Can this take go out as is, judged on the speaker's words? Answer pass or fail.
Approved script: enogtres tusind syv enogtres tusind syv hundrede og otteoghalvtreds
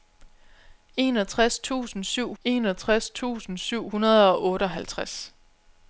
pass